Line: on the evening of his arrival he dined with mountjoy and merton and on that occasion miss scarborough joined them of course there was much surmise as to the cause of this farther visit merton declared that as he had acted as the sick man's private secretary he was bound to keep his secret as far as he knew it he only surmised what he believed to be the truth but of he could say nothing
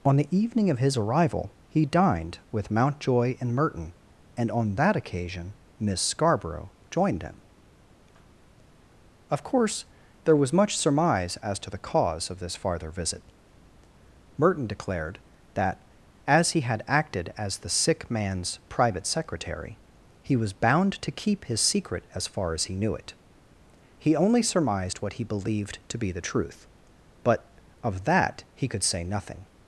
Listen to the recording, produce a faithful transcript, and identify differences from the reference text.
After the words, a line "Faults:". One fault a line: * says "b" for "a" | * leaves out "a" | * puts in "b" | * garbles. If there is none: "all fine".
on the evening of his arrival he dined with mountjoy and merton and on that occasion miss scarborough joined them of course there was much surmise as to the cause of this farther visit merton declared that as he had acted as the sick man's private secretary he was bound to keep his secret as far as he knew it he only surmised what he believed to be the truth but of that he could say nothing
Faults:
* puts in "that"